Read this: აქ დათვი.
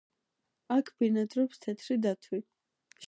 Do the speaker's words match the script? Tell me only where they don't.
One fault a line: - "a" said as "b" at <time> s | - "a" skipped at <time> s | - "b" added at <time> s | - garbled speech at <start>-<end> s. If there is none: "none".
- "ბინადრობს თეთრი" added at 1.0 s